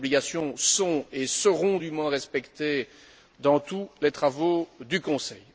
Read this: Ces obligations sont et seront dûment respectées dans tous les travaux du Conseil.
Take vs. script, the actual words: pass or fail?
pass